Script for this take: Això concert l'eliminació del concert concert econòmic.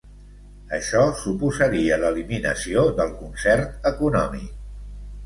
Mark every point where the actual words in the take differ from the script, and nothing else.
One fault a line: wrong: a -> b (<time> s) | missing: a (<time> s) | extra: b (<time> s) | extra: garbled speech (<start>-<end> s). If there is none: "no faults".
wrong: concert -> suposaria (1.2 s)
missing: concert (3.9 s)